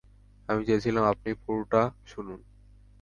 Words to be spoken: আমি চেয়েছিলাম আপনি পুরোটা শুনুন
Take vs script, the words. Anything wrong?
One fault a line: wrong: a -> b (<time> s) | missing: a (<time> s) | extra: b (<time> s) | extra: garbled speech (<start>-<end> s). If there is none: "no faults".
no faults